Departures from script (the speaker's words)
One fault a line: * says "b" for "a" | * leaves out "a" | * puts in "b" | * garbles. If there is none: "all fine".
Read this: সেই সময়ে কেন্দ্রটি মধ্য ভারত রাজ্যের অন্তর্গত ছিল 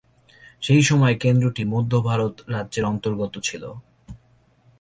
all fine